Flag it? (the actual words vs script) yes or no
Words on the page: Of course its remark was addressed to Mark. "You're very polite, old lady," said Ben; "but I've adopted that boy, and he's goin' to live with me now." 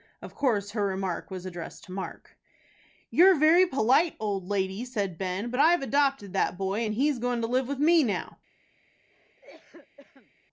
yes